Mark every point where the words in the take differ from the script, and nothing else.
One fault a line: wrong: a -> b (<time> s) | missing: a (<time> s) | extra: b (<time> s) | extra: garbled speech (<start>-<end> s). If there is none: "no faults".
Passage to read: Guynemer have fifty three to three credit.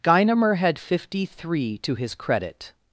wrong: have -> had (0.6 s)
wrong: three -> his (1.9 s)